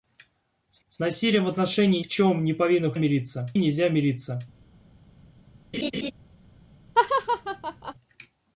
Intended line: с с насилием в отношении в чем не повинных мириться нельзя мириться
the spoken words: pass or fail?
pass